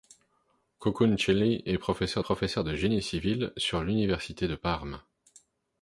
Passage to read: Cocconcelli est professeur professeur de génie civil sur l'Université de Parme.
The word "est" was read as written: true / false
true